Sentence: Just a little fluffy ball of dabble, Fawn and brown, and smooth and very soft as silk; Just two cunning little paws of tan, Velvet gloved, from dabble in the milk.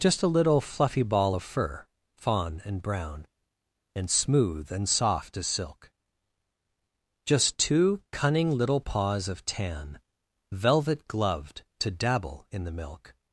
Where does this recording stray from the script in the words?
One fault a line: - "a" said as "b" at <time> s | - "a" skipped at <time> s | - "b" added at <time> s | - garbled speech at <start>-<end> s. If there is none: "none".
- "dabble" said as "fur" at 1.4 s
- "very" skipped at 4.9 s
- "from" said as "to" at 11.8 s